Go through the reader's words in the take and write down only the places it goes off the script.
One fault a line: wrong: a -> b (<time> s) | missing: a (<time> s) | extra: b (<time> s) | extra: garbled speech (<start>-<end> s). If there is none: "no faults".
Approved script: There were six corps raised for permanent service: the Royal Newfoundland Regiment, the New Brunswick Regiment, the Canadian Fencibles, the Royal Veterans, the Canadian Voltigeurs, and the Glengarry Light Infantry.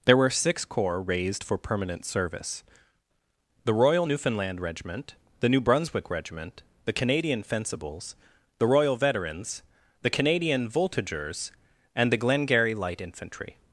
no faults